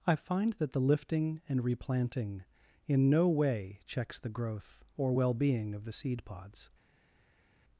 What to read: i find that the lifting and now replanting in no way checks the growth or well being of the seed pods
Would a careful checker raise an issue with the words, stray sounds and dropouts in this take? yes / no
yes